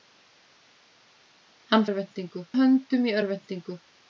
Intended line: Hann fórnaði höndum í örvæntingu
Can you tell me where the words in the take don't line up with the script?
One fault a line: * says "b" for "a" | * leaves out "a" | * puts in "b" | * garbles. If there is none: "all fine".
* says "örvæntingu" for "fórnaði"